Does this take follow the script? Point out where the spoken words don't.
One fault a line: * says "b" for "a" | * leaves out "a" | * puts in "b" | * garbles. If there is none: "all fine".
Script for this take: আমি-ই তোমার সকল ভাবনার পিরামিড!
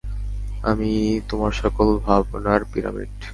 all fine